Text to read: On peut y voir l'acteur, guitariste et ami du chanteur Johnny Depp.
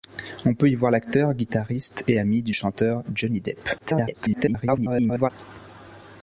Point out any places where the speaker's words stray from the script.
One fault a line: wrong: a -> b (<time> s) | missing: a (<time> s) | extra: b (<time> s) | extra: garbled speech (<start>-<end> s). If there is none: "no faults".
extra: garbled speech (3.8-5.3 s)